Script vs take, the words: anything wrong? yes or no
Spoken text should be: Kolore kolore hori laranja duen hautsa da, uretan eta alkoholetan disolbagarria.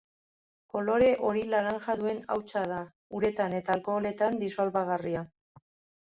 yes